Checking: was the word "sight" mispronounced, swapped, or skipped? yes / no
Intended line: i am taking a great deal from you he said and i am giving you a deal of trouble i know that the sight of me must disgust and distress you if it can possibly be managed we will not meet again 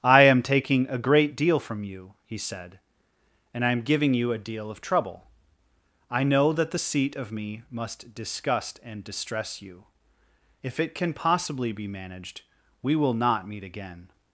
yes